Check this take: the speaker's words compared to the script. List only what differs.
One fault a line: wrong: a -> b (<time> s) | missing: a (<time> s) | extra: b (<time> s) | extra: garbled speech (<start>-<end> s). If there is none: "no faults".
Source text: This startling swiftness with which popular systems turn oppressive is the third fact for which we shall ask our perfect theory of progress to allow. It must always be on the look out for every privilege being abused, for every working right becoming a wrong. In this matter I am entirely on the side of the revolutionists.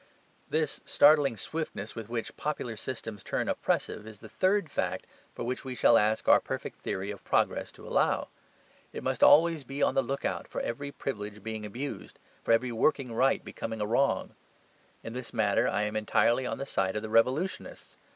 no faults